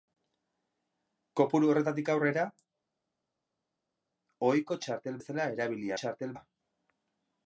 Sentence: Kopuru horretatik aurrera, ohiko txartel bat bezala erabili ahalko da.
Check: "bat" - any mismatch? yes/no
yes